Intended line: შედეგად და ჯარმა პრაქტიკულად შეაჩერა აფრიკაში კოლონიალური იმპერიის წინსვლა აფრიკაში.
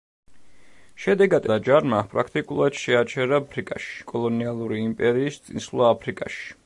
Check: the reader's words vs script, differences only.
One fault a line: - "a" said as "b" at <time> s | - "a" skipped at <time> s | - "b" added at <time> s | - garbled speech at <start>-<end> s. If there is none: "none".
none